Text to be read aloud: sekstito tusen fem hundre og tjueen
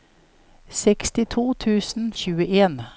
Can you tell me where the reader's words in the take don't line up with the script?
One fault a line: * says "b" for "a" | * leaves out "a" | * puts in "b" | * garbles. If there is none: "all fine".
* leaves out "fem hundre og"